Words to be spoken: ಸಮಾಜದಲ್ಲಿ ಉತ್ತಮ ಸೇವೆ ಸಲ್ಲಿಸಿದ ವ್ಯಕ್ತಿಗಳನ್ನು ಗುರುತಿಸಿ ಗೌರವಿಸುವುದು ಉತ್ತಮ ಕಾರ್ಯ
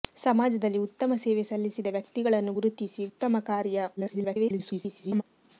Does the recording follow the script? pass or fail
fail